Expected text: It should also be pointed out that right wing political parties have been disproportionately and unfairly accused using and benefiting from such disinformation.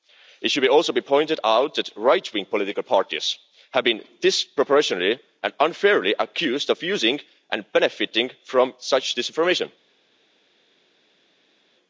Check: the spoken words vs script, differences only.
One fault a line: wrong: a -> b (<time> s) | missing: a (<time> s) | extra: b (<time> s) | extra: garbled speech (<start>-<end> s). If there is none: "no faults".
extra: of (6.7 s)